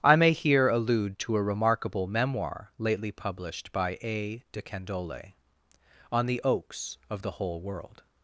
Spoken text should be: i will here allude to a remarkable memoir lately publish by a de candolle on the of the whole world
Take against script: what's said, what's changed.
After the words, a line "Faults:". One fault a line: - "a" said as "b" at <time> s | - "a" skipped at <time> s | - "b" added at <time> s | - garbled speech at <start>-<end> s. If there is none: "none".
i may here allude to a remarkable memoir lately published by a de candolle on the oaks of the whole world
Faults:
- "will" said as "may" at 0.1 s
- "publish" said as "published" at 3.1 s
- "oaks" added at 6.4 s